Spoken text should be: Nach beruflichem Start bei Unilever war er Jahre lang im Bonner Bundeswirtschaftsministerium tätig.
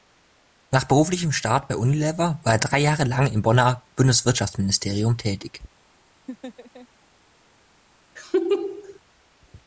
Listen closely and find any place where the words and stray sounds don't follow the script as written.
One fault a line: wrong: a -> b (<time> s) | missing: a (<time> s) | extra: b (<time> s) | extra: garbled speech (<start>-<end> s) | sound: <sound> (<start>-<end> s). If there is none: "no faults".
extra: drei (2.6 s)
sound: laugh (6.3-6.9 s)
sound: laugh (8.2-9.0 s)